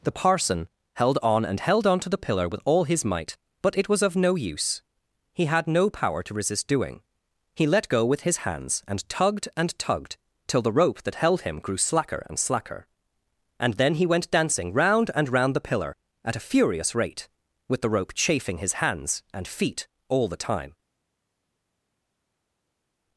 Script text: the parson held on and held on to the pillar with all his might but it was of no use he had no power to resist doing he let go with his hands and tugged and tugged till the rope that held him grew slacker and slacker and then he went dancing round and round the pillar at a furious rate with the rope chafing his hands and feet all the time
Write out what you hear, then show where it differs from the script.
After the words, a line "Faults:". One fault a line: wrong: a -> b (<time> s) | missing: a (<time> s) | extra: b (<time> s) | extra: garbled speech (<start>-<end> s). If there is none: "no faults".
the parson held on and held on to the pillar with all his might but it was of no use he had no power to resist doing he let go with his hands and tugged and tugged till the rope that held him grew slacker and slacker and then he went dancing round and round the pillar at a furious rate with the rope chafing his hands and feet all the time
Faults:
no faults